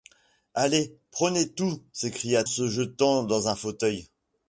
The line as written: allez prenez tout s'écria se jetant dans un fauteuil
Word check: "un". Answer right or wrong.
right